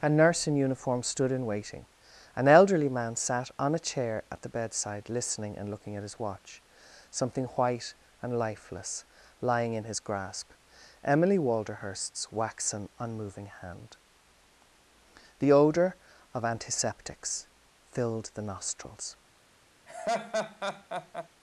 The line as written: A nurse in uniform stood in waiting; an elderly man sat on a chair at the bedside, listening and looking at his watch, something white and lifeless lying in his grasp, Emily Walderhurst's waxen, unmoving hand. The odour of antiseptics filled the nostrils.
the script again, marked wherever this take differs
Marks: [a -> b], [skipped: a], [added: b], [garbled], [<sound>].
A nurse in uniform stood in waiting; an elderly man sat on a chair at the bedside, listening and looking at his watch, something white and lifeless lying in his grasp, Emily Walderhurst's waxen, unmoving hand. The odour of antiseptics filled the nostrils. [laugh]